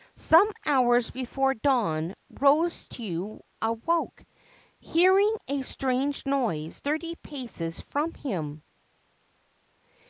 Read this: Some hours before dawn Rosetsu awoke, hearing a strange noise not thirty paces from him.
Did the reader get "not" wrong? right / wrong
wrong